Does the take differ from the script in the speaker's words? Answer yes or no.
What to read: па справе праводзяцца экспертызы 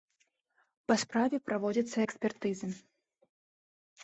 no